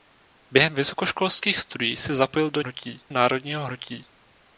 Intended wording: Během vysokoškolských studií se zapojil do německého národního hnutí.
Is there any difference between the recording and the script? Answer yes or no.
yes